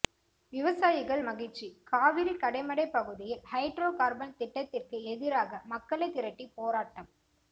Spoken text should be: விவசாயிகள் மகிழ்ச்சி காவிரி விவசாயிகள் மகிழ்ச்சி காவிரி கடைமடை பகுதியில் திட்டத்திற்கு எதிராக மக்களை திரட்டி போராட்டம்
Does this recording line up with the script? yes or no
no